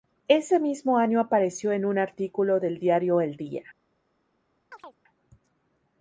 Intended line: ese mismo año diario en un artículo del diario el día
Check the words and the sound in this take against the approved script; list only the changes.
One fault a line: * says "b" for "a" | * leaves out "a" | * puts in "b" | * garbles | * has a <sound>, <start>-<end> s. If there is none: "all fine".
* says "apareció" for "diario"
* has a chirp, 4.7-5.0 s